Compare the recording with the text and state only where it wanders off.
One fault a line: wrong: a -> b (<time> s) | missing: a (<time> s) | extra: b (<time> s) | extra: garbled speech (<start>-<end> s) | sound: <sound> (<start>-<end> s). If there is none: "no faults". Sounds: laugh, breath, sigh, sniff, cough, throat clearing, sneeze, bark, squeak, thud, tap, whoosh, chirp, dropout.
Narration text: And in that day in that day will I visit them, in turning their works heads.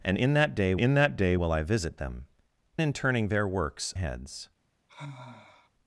sound: sigh (4.9-5.7 s)